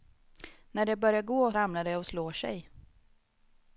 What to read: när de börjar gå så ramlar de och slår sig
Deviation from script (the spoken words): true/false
true